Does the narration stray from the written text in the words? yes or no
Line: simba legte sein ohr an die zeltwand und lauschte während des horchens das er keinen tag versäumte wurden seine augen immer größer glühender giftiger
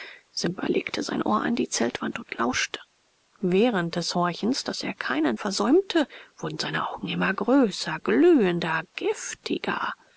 yes